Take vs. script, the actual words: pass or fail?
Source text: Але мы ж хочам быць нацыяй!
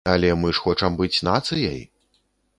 pass